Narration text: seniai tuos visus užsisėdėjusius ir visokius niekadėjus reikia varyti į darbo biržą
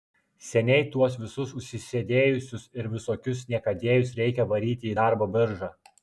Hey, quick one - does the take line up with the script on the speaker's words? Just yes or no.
yes